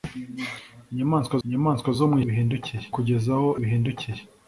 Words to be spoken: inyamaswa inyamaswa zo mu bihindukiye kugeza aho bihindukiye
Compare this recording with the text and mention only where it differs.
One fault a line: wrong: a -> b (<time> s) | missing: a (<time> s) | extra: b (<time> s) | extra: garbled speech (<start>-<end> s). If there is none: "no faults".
no faults